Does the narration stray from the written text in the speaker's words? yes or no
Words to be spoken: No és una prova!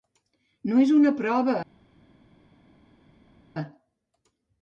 no